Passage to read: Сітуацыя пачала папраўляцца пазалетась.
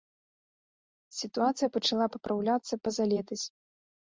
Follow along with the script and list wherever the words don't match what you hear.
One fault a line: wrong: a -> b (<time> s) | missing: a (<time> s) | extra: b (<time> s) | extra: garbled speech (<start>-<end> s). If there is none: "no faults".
no faults